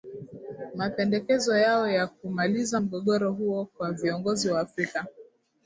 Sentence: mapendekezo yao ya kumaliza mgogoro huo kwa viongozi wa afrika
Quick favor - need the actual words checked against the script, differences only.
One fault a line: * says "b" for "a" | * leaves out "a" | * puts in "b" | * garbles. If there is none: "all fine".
all fine